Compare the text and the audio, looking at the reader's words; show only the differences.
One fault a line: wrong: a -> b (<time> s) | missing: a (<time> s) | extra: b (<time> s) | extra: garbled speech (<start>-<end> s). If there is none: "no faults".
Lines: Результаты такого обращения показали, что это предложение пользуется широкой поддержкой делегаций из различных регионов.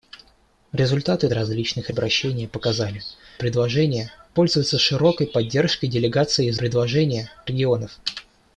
wrong: такого -> различных (1.3 s)
missing: что это (3.0 s)
wrong: различных -> предложение (6.5 s)